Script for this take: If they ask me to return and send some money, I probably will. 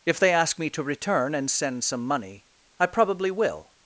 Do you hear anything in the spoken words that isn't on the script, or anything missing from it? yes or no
no